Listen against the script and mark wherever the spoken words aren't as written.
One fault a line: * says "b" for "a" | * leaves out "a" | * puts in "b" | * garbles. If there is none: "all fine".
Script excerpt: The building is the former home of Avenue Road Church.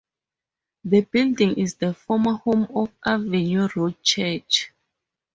all fine